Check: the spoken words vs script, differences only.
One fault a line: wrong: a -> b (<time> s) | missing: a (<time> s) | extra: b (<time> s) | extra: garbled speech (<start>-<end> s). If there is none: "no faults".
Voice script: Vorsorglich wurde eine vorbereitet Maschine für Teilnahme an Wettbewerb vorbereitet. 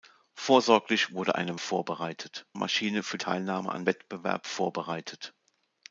no faults